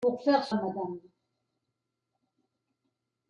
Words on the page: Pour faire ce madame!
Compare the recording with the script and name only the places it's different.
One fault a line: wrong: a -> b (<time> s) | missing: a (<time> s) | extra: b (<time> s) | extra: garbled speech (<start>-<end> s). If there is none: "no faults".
no faults